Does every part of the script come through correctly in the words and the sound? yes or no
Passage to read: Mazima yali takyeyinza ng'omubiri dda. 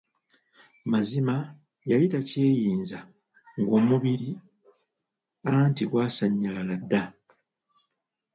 no